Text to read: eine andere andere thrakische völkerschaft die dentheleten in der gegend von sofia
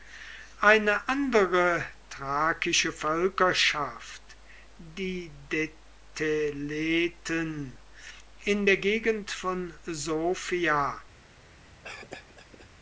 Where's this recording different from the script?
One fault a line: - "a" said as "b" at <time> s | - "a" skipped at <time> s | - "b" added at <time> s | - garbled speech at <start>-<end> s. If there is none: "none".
- "andere" skipped at 1.8 s